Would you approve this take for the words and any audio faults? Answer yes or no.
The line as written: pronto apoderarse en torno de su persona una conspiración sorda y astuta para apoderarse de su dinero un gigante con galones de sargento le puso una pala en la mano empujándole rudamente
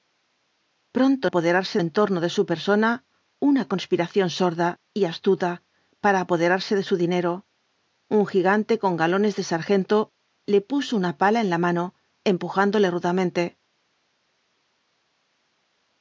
yes